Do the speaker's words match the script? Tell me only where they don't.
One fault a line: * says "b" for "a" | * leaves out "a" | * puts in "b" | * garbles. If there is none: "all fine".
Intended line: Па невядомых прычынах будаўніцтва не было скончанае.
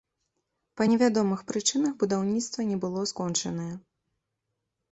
all fine